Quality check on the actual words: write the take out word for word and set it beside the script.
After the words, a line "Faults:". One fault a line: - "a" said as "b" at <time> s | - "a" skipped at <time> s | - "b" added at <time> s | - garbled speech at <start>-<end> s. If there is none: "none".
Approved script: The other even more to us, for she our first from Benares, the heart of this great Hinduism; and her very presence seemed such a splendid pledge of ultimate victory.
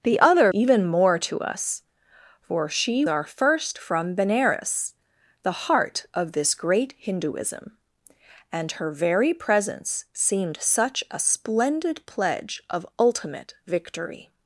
The other even more to us, for she our first from Benares, the heart of this great Hinduism; and her very presence seemed such a splendid pledge of ultimate victory.
Faults:
none